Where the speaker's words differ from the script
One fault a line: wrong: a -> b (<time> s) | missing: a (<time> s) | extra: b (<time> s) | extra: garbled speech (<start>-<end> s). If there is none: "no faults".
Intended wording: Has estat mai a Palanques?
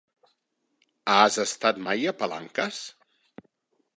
no faults